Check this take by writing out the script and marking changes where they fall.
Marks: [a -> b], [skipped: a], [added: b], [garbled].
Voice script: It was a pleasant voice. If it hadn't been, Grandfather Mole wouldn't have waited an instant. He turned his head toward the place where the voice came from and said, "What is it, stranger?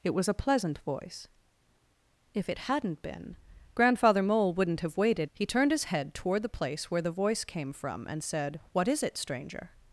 It was a pleasant voice. If it hadn't been, Grandfather Mole wouldn't have waited [skipped: an instant.] He turned his head toward the place where the voice came from and said, "What is it, stranger?